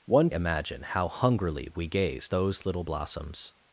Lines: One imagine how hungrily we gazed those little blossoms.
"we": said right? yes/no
yes